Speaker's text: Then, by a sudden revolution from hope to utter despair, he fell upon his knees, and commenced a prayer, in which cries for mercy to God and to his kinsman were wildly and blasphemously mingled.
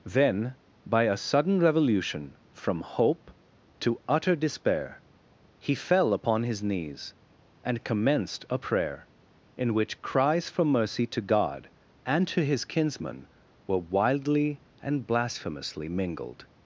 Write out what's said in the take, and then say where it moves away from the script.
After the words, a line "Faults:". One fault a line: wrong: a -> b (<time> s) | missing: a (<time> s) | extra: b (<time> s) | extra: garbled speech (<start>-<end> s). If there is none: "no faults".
Then, by a sudden revolution from hope to utter despair, he fell upon his knees, and commenced a prayer, in which cries for mercy to God and to his kinsman were wildly and blasphemously mingled.
Faults:
no faults